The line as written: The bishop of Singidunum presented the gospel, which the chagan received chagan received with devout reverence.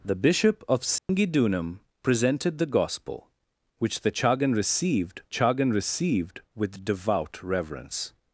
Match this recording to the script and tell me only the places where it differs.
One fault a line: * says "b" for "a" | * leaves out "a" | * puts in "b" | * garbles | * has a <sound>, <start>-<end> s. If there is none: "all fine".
* has a dropout, 1.0-1.1 s